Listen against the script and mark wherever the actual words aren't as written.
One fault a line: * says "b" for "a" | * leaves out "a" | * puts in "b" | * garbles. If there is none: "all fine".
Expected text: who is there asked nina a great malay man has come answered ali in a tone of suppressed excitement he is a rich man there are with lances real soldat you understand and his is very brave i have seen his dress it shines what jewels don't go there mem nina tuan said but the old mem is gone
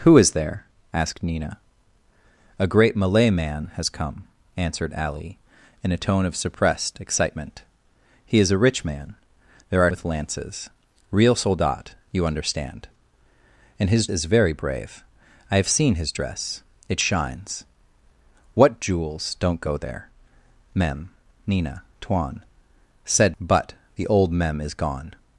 all fine